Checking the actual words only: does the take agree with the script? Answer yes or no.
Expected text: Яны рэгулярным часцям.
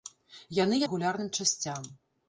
yes